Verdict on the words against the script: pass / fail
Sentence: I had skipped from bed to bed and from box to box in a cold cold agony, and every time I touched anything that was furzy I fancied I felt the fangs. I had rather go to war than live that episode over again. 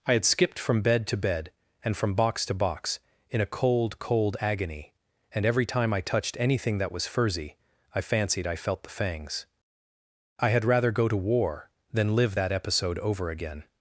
pass